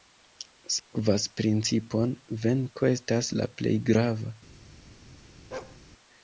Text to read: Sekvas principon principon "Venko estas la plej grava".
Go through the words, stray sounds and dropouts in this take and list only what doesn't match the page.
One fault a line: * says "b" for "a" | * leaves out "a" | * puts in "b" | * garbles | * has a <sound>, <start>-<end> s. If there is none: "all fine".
* has a dropout, 0.8-0.9 s
* leaves out "principon"
* has a bark, 5.5-5.8 s